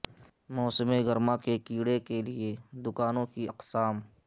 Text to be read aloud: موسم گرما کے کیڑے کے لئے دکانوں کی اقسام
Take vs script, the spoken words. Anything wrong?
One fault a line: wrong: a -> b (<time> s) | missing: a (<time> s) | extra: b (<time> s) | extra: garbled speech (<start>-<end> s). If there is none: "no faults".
no faults